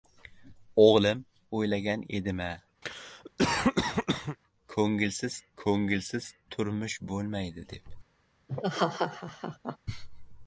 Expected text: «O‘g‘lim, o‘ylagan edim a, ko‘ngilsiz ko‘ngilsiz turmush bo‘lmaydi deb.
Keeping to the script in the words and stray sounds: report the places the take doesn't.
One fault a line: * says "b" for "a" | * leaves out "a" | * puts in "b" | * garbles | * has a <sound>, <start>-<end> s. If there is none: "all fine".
* has a cough, 2.8-4.4 s
* has a laugh, 8.5-9.8 s